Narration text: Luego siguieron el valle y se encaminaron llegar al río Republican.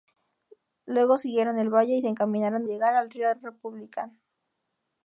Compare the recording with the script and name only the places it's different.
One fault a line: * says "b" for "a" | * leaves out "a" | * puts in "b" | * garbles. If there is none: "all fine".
all fine